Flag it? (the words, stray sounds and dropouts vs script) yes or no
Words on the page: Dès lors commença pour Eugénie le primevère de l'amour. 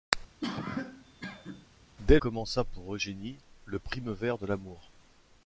yes